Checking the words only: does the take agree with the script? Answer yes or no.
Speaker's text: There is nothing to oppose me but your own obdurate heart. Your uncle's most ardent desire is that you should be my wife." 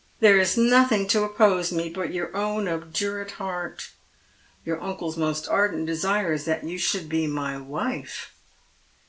yes